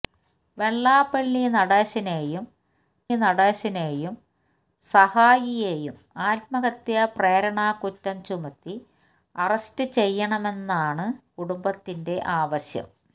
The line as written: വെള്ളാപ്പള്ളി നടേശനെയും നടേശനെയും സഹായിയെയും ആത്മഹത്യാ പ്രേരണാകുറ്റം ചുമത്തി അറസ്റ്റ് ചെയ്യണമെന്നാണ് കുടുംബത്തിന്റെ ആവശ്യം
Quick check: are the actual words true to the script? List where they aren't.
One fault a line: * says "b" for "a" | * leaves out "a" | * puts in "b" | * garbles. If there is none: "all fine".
all fine